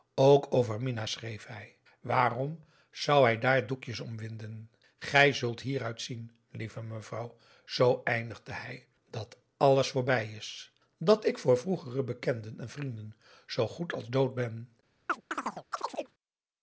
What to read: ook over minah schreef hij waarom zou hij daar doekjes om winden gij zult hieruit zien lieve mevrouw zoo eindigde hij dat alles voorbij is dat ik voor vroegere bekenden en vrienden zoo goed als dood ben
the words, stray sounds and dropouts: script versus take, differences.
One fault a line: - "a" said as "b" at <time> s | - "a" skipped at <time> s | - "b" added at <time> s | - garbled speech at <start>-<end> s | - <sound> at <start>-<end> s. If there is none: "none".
- chirp at 15.1-16.1 s